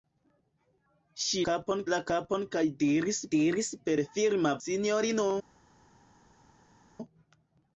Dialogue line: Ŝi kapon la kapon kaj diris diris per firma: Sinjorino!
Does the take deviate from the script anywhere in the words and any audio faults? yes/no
no